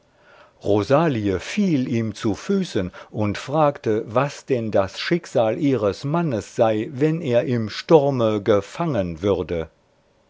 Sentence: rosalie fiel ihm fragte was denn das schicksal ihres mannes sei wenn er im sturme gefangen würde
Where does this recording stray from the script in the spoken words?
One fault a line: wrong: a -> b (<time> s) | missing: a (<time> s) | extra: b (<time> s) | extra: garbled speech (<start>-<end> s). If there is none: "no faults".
extra: zu füßen und (2.1 s)